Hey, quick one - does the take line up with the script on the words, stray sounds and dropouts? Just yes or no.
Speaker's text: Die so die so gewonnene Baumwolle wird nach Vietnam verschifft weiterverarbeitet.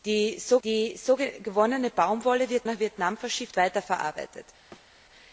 no